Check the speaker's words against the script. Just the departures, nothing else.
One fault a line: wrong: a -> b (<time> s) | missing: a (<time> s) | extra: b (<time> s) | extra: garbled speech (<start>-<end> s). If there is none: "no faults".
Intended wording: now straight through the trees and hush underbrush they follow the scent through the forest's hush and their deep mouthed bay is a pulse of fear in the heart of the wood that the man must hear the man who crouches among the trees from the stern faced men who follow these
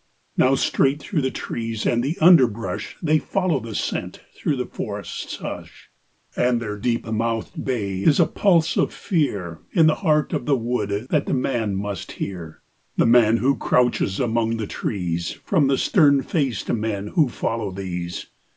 wrong: hush -> the (2.0 s)